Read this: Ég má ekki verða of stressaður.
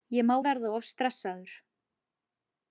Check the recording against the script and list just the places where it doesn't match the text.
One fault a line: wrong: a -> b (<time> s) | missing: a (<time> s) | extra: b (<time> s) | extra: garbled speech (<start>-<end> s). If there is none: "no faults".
missing: ekki (0.3 s)